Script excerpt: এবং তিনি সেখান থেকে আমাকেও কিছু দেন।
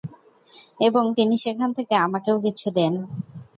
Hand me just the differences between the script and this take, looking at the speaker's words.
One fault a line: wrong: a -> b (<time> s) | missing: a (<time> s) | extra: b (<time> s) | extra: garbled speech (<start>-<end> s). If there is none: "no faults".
no faults